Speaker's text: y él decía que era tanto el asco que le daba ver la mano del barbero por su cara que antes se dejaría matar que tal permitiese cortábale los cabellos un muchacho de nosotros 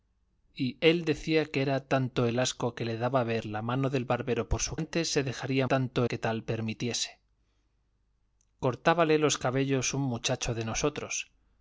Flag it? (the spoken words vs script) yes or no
yes